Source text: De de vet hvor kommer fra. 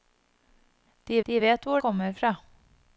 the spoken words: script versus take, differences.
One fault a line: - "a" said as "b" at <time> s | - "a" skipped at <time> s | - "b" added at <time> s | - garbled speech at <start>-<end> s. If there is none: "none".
none